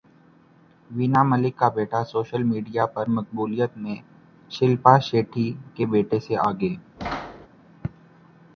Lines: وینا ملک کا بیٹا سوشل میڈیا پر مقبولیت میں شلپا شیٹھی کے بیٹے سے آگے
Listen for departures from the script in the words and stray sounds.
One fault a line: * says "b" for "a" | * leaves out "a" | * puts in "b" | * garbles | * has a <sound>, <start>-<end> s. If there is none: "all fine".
* has a thud, 7.0-7.5 s